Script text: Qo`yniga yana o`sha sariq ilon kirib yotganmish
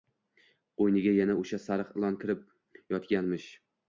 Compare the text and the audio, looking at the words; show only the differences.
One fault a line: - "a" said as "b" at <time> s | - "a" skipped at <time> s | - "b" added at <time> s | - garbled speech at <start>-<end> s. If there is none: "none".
none